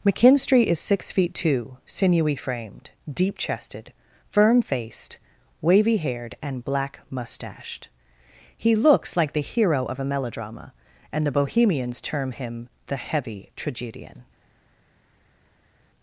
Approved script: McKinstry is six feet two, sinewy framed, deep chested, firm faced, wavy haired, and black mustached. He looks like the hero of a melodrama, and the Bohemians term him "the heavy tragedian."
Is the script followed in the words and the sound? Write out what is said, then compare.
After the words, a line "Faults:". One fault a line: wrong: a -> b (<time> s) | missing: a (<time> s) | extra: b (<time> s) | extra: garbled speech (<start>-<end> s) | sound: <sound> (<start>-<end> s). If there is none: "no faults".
McKinstry is six feet two, sinewy framed, deep chested, firm faced, wavy haired, and black mustached. He looks like the hero of a melodrama, and the Bohemians term him "the heavy tragedian."
Faults:
no faults